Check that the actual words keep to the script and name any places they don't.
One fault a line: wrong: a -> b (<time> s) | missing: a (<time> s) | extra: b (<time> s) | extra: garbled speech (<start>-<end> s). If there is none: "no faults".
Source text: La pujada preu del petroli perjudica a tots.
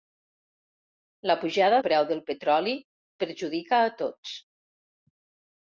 no faults